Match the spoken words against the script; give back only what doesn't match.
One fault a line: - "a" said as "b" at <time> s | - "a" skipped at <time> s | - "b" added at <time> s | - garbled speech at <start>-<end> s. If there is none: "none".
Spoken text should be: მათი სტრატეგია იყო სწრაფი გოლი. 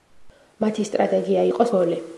- "სწრაფი" skipped at 1.7 s